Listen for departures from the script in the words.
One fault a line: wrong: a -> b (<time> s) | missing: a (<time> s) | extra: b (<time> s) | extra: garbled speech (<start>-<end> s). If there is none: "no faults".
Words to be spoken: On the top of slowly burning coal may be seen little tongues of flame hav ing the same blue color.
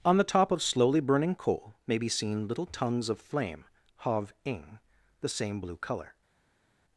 no faults